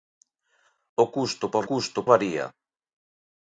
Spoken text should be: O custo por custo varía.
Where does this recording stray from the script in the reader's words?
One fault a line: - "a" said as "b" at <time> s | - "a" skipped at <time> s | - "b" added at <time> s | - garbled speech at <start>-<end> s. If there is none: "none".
none